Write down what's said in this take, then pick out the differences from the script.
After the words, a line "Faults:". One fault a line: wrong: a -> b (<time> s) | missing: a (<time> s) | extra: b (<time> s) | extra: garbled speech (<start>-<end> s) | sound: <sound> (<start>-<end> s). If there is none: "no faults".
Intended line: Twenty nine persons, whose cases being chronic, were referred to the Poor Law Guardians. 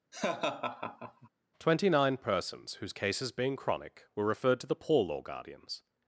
Twenty nine persons, whose cases being chronic, were referred to the Poor Law Guardians.
Faults:
sound: laugh (0.1-1.3 s)